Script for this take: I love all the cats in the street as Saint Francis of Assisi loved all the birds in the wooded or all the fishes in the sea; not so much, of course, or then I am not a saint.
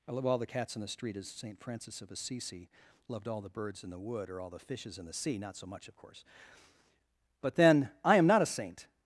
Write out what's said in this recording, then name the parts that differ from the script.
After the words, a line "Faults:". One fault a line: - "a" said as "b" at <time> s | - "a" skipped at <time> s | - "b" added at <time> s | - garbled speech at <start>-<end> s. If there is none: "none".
I love all the cats in the street as Saint Francis of Assisi loved all the birds in the wood or all the fishes in the sea; not so much, of course, but then I am not a saint.
Faults:
- "wooded" said as "wood" at 4.0 s
- "or" said as "but" at 7.4 s